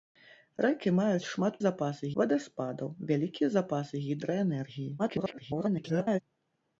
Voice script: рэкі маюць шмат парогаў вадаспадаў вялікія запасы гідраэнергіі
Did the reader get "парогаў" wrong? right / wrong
wrong